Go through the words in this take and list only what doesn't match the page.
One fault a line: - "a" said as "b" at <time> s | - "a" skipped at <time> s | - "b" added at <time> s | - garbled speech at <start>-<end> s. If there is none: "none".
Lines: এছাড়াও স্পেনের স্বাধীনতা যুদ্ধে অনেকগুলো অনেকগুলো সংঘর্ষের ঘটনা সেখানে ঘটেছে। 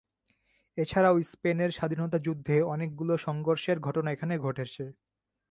- "অনেকগুলো" skipped at 3.1 s
- "সেখানে" said as "এখানে" at 4.1 s